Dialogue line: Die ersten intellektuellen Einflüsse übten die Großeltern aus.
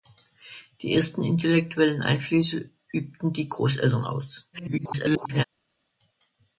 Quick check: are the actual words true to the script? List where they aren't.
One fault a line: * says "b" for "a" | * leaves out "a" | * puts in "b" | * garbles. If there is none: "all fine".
* garbles